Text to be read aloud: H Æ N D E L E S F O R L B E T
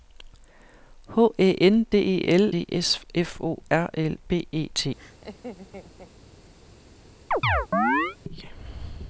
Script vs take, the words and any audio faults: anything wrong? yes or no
yes